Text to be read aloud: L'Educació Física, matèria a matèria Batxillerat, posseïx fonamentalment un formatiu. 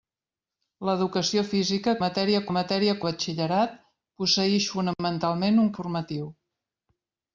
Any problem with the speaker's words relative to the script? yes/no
no